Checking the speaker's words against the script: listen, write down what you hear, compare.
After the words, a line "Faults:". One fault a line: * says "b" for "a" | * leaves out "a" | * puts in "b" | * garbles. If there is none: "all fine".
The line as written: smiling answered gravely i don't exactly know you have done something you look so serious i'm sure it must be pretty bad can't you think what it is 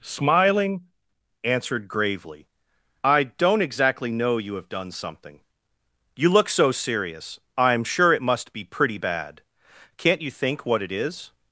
smiling answered gravely i don't exactly know you have done something you look so serious i'm sure it must be pretty bad can't you think what it is
Faults:
all fine